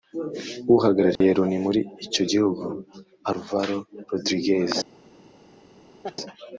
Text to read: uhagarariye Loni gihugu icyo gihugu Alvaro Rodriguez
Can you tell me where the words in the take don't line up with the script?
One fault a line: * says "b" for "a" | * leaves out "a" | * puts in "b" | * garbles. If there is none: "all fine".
* says "muri" for "gihugu"